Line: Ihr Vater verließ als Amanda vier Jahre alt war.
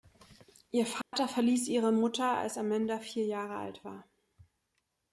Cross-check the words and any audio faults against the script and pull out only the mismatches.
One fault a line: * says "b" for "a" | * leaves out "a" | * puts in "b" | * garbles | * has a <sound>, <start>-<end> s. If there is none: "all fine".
* has a dropout, 1.0-1.1 s
* puts in "ihre Mutter"